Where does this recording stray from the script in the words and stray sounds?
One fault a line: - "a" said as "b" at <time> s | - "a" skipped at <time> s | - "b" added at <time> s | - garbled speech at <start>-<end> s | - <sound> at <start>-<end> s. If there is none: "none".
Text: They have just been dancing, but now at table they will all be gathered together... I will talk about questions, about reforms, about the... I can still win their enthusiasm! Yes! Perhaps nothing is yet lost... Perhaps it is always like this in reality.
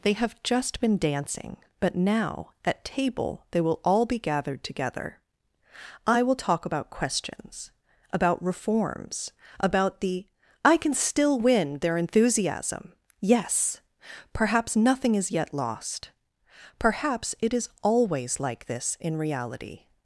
none